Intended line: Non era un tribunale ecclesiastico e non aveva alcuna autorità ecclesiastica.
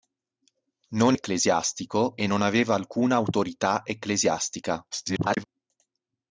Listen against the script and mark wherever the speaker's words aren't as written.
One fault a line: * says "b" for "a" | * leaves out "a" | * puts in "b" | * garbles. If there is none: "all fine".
* leaves out "era un tribunale"
* garbles